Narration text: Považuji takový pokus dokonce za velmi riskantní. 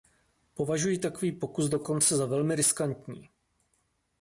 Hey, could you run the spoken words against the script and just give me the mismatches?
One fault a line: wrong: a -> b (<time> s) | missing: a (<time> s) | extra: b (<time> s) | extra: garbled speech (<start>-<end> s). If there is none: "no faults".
no faults